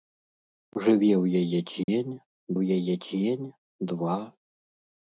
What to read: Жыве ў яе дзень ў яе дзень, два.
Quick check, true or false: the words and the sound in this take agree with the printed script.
false